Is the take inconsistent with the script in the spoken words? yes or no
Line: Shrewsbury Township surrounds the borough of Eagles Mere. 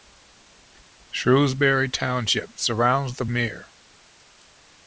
yes